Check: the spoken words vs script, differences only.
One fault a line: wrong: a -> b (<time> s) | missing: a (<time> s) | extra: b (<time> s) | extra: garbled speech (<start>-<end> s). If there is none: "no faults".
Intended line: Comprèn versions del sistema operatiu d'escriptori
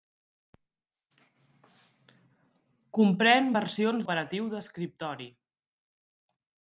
missing: del sistema (4.1 s)